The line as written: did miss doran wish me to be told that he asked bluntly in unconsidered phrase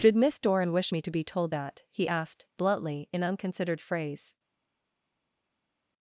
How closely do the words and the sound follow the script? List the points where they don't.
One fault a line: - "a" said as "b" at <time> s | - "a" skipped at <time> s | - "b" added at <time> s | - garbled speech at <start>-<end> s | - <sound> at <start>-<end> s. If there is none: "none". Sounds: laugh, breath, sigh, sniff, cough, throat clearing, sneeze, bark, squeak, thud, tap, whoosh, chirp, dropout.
none